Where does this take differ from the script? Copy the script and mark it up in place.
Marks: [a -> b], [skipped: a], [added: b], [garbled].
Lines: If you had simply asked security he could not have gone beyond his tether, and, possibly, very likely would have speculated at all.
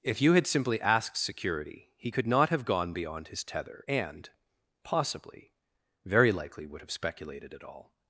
If you had simply asked security he could not have gone beyond his tether, and, possibly, very likely would have speculated at all.